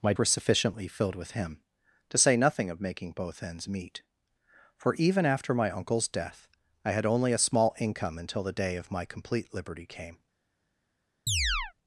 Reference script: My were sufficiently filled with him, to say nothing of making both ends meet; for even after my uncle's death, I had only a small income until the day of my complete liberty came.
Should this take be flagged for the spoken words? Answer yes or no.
no